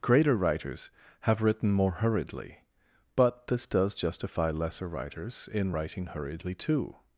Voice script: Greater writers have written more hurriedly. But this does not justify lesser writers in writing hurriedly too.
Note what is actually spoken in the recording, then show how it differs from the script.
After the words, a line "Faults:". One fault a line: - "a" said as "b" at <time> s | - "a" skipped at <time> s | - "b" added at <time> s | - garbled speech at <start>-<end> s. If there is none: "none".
Greater writers have written more hurriedly. But this does justify lesser writers in writing hurriedly too.
Faults:
- "not" skipped at 3.9 s